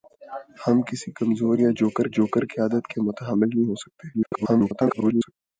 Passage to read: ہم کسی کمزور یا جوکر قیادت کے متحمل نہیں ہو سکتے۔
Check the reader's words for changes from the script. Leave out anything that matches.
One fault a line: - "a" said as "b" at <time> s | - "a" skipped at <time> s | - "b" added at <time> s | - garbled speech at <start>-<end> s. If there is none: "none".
- "جوکر" added at 2.1 s
- garbled speech at 4.1-5.3 s